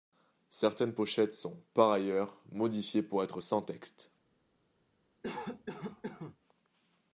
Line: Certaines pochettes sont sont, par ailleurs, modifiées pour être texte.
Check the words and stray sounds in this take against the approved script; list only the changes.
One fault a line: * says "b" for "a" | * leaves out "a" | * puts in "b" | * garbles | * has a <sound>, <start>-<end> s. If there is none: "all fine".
* leaves out "sont"
* puts in "sans"
* has a cough, 5.2-6.4 s